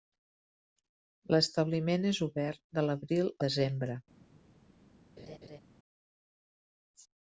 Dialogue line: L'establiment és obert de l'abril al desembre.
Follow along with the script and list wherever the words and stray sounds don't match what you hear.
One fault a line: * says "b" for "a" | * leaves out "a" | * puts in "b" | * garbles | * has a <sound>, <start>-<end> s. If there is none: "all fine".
* leaves out "al"
* has a laugh, 5.2-5.6 s